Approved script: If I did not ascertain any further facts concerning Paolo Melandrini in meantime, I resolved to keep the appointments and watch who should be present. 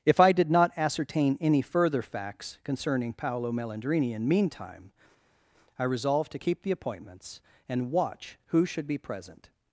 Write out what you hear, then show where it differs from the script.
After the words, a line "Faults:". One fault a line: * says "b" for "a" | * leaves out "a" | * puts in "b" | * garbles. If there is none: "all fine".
If I did not ascertain any further facts concerning Paolo Melandrini in meantime, I resolved to keep the appointments and watch who should be present.
Faults:
all fine